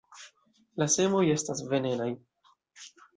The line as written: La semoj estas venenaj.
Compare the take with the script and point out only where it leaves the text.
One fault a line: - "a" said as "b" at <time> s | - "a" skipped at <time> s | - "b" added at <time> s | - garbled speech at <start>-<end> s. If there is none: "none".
none